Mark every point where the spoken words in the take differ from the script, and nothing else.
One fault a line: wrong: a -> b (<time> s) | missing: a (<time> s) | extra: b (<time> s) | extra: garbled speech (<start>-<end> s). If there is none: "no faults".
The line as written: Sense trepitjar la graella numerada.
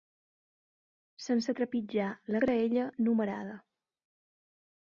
no faults